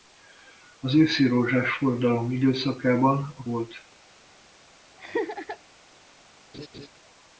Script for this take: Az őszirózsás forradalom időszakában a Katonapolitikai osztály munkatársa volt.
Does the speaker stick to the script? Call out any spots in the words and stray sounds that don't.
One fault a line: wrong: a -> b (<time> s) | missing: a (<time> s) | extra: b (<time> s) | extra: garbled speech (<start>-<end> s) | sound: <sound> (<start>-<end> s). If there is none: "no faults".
missing: Katonapolitikai osztály munkatársa (3.4 s)
sound: laugh (5.0-5.6 s)
sound: laugh (6.5-6.9 s)